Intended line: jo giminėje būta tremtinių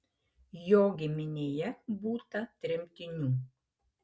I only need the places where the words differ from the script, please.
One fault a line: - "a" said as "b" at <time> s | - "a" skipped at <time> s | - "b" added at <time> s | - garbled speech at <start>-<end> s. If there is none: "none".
none